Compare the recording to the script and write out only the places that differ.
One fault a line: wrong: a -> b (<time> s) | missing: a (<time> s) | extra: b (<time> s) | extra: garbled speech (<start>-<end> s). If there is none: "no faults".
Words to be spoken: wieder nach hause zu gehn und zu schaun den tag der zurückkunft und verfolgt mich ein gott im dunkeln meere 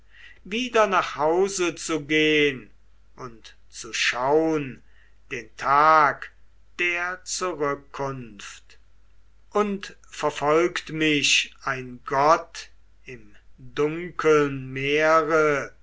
no faults